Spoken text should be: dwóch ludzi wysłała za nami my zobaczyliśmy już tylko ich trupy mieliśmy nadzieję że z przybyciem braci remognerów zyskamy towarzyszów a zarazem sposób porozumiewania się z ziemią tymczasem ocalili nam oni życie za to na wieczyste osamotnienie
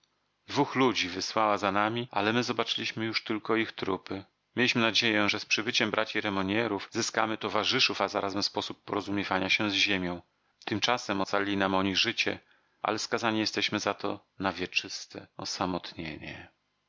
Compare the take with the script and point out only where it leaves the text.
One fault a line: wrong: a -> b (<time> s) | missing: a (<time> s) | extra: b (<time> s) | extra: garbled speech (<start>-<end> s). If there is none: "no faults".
extra: ale (2.1 s)
extra: ale skazani jesteśmy (12.8 s)